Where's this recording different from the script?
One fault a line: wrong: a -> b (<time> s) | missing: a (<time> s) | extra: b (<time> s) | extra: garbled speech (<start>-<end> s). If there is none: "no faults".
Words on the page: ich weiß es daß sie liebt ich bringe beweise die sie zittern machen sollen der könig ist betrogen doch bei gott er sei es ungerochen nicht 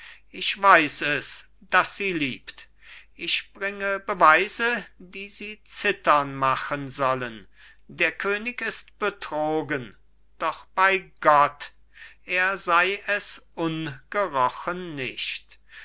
no faults